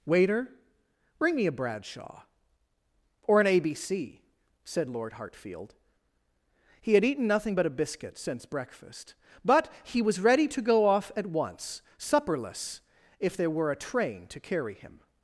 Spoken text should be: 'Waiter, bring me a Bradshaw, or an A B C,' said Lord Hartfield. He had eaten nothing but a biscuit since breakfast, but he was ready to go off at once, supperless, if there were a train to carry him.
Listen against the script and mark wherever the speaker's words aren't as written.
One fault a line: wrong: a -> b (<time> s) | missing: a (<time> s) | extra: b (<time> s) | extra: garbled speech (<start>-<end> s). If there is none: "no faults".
no faults